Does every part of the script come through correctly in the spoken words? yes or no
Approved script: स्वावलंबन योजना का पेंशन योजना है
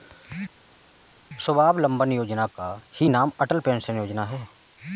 no